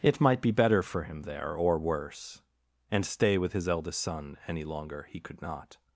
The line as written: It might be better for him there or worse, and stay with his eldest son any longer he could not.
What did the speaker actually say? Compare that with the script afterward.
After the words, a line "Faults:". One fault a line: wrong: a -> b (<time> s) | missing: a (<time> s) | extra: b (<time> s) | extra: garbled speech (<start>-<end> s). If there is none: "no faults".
It might be better for him there or worse, and stay with his eldest son any longer he could not.
Faults:
no faults